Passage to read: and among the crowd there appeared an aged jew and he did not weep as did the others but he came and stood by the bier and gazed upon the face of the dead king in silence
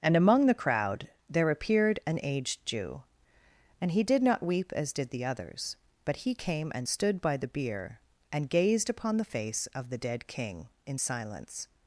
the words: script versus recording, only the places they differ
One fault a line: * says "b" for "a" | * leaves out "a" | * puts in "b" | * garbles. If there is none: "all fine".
all fine